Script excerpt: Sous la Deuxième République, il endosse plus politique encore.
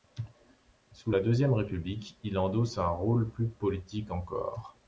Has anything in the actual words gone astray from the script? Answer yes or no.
yes